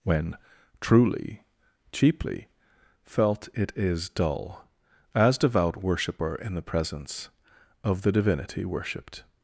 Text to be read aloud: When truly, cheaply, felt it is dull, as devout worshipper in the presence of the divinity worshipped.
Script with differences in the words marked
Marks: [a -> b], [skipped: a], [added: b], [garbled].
When truly, cheaply, felt it is dull, as devout worshipper in the presence of the divinity worshipped.